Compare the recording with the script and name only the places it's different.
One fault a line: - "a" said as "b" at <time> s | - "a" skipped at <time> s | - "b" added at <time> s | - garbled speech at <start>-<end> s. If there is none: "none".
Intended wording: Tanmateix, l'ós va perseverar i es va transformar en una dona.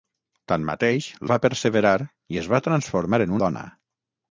- "l'ós" skipped at 1.1 s
- "una" skipped at 3.4 s